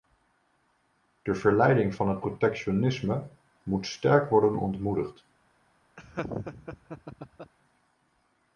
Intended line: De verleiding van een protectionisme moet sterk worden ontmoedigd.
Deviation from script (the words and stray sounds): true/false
true